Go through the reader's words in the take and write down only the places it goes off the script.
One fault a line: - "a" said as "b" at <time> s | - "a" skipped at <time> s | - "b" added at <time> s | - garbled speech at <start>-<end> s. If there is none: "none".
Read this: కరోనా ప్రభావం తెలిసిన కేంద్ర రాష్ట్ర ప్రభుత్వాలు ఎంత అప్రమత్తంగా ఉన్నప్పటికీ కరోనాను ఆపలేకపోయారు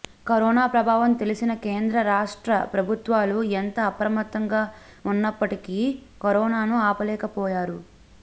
none